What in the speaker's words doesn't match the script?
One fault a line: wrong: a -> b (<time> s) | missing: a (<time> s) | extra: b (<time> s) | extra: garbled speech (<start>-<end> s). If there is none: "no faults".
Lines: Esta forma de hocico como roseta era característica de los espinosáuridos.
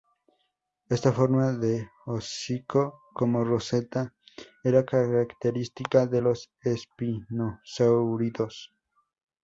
no faults